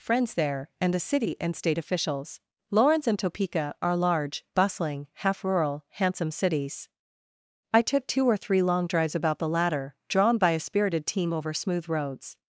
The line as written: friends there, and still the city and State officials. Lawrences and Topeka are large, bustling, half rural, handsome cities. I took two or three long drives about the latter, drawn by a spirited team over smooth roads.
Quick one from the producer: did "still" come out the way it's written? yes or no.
no